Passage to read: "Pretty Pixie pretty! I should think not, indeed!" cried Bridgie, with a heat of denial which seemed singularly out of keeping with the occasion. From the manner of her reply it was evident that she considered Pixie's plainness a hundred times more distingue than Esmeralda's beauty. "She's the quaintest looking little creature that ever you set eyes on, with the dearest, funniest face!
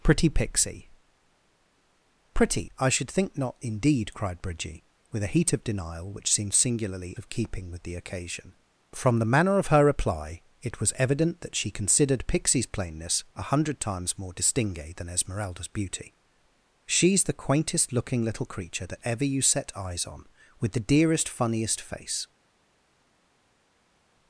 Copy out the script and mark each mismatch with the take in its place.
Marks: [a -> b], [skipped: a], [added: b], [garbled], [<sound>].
"Pretty Pixie pretty! I should think not, indeed!" cried Bridgie, with a heat of denial which seemed singularly [skipped: out] of keeping with the occasion. From the manner of her reply it was evident that she considered Pixie's plainness a hundred times more distingue than Esmeralda's beauty. "She's the quaintest looking little creature that ever you set eyes on, with the dearest, funniest face!